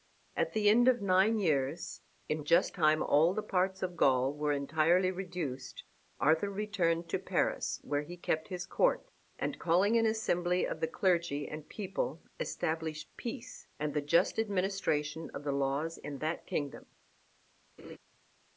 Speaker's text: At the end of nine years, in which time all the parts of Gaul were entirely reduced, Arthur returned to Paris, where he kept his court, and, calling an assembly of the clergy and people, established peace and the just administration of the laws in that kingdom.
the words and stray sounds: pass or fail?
fail